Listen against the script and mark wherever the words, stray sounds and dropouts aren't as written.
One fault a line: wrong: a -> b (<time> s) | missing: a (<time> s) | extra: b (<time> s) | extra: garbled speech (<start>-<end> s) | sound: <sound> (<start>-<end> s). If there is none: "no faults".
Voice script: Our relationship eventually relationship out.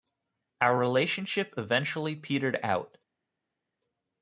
wrong: relationship -> petered (2.2 s)